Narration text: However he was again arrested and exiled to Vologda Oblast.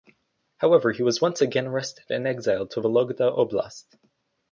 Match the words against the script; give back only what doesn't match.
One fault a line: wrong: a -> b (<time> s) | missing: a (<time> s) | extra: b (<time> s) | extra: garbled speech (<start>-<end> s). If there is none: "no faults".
extra: once (1.2 s)